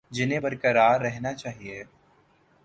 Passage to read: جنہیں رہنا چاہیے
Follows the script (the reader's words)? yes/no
no